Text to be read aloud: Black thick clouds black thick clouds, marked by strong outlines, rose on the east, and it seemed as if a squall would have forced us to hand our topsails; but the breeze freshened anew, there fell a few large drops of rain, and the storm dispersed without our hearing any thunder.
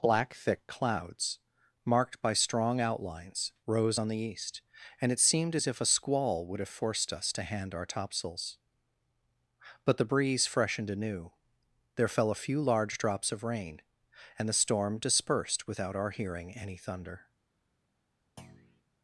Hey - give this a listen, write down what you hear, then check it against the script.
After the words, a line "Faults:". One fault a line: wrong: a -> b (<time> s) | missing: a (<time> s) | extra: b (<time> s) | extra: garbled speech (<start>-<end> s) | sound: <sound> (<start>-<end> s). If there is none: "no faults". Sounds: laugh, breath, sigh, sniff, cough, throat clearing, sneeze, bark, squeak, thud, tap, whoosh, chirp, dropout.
Black thick clouds, marked by strong outlines, rose on the east, and it seemed as if a squall would have forced us to hand our topsails; but the breeze freshened anew, there fell a few large drops of rain, and the storm dispersed without our hearing any thunder.
Faults:
missing: black thick clouds (1.4 s)
sound: thud (18.4-18.8 s)